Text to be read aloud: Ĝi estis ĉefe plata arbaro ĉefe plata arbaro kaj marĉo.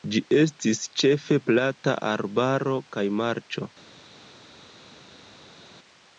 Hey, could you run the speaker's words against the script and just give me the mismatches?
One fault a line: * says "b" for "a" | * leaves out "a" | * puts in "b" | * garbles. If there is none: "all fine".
* leaves out "ĉefe plata arbaro"